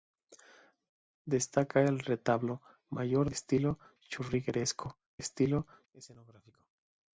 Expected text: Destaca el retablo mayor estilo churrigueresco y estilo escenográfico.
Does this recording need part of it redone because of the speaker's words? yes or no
no